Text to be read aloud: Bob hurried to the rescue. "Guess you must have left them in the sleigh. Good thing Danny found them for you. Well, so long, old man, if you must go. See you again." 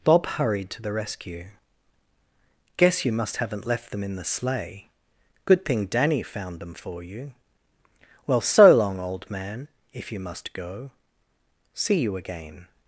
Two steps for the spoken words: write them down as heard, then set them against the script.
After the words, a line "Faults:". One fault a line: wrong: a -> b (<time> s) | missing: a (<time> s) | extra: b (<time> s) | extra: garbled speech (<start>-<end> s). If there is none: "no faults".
Bob hurried to the rescue. "Guess you must haven't left them in the sleigh. Good thing Danny found them for you. Well, so long, old man, if you must go. See you again."
Faults:
wrong: have -> haven't (3.4 s)